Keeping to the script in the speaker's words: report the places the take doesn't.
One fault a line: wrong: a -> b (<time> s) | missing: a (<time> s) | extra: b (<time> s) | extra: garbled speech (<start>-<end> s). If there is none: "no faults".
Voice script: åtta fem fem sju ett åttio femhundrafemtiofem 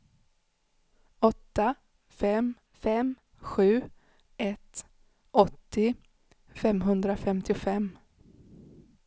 no faults